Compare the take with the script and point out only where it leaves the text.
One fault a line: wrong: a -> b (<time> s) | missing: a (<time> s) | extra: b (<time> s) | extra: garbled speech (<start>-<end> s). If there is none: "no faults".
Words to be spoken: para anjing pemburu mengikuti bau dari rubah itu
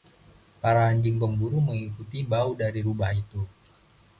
no faults